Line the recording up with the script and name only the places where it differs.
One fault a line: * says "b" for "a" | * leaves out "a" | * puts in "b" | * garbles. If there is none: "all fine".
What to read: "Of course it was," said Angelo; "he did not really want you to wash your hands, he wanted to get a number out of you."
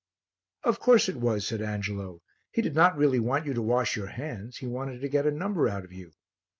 all fine